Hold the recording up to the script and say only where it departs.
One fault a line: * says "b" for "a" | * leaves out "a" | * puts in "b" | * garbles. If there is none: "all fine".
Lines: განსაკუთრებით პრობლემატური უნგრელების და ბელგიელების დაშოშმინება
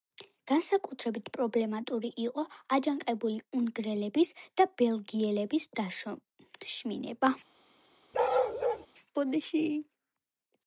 * puts in "იყო აჯანყებული"